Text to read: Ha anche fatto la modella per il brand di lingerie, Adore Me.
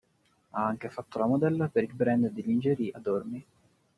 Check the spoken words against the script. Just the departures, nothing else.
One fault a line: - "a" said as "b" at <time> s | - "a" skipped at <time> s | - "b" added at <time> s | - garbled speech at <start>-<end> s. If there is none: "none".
none